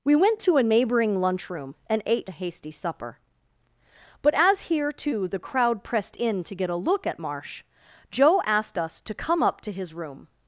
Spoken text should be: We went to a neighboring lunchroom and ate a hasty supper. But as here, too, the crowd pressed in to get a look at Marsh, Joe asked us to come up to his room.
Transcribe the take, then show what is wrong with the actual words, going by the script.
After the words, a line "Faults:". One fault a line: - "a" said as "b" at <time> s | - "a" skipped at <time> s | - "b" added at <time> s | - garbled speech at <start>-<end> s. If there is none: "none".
We went to a neighboring lunchroom and ate a hasty supper. But as here, too, the crowd pressed in to get a look at Marsh, Joe asked us to come up to his room.
Faults:
none